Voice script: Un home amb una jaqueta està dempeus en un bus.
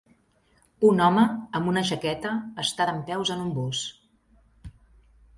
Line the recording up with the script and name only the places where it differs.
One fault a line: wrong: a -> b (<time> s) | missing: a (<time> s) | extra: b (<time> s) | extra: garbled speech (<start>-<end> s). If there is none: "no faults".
no faults